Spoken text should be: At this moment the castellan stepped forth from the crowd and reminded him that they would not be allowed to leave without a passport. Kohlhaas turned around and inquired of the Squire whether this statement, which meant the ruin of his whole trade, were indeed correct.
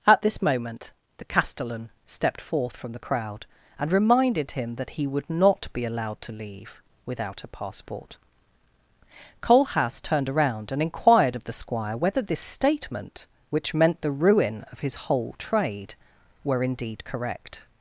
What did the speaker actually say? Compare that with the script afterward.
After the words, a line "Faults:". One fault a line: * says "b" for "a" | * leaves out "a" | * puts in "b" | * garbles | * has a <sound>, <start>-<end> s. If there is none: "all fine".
At this moment the castellan stepped forth from the crowd and reminded him that he would not be allowed to leave without a passport. Kohlhaas turned around and inquired of the Squire whether this statement, which meant the ruin of his whole trade, were indeed correct.
Faults:
* says "he" for "they"